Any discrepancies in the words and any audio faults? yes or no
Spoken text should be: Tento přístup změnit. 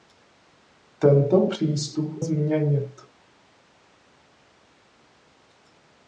no